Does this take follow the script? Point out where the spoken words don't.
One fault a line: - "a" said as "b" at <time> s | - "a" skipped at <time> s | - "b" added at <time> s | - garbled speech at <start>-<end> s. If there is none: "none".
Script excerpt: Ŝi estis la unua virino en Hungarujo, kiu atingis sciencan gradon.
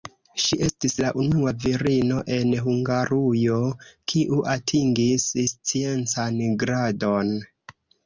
none